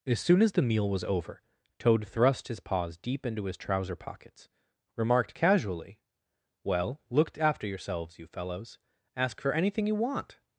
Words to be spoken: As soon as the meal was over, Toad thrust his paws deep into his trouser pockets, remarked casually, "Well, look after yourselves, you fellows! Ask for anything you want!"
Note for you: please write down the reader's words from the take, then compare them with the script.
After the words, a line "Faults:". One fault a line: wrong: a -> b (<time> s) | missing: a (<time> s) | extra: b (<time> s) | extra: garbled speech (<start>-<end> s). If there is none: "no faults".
As soon as the meal was over, Toad thrust his paws deep into his trouser pockets, remarked casually, "Well, look after yourselves, you fellows! Ask for anything you want!"
Faults:
no faults